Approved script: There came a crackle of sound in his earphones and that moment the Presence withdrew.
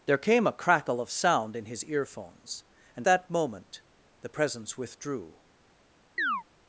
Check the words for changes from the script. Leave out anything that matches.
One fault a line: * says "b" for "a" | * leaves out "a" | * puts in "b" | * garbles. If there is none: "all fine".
all fine